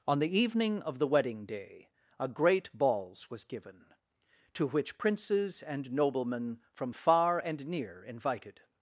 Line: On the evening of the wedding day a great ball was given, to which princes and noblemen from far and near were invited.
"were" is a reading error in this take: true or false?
true